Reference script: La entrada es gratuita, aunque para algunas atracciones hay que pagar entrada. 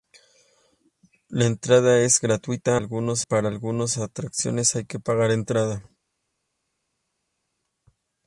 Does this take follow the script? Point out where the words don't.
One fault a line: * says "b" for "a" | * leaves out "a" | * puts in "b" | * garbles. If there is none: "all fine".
* says "algunas" for "aunque"